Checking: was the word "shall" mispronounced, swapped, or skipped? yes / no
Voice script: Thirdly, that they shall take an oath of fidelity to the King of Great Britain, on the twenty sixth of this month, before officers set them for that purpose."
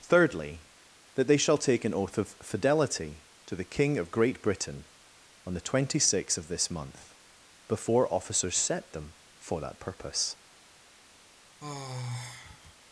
no